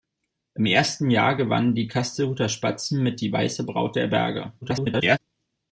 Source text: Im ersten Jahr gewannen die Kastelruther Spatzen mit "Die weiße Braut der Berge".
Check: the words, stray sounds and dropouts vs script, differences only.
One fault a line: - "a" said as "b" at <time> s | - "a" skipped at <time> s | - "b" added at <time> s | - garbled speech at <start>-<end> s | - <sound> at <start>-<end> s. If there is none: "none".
- garbled speech at 4.6-5.2 s